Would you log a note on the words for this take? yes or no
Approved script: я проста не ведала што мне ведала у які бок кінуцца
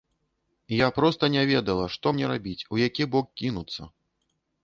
yes